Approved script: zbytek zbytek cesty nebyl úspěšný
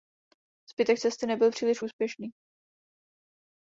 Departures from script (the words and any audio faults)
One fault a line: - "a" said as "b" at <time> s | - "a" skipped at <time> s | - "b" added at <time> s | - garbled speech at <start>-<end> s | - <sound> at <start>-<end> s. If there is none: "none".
- "zbytek" skipped at 1.0 s
- "příliš" added at 1.5 s